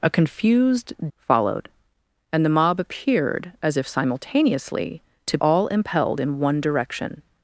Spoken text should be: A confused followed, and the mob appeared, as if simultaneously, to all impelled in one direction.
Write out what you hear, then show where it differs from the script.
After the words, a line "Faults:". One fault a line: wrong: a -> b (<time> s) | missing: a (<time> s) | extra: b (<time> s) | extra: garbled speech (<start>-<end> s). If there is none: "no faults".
A confused followed, and the mob appeared, as if simultaneously, to all impelled in one direction.
Faults:
no faults